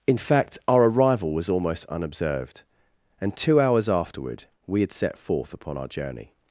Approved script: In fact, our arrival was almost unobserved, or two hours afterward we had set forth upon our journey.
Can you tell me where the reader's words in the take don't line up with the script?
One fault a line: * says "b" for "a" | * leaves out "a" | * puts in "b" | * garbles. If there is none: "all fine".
* says "and" for "or"